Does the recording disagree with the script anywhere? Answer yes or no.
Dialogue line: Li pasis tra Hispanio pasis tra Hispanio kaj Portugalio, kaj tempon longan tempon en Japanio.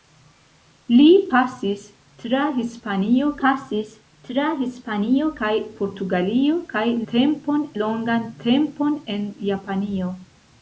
no